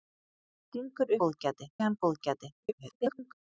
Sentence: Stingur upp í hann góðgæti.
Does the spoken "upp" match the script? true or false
false